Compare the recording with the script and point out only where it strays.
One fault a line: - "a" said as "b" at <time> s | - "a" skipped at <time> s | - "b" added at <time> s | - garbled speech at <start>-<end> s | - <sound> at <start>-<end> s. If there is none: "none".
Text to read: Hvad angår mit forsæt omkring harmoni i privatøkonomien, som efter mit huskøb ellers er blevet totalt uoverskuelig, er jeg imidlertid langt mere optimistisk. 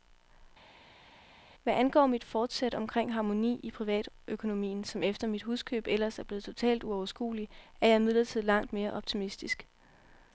none